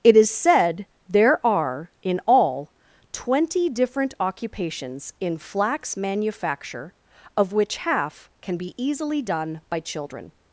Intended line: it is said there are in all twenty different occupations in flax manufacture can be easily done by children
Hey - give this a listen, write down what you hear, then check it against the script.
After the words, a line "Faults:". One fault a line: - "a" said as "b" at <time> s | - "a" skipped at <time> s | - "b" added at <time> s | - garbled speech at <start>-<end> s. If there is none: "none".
it is said there are in all twenty different occupations in flax manufacture of which half can be easily done by children
Faults:
- "of which half" added at 7.4 s